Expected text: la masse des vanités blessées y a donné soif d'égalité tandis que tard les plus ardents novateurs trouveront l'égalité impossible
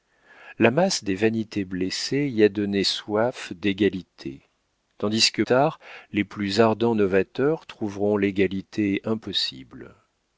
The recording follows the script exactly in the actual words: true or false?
true